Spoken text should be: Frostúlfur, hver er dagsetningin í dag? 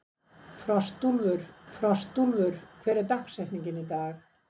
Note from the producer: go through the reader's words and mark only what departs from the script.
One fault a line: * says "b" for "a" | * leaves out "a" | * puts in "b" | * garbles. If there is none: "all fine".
* puts in "frostúlfur"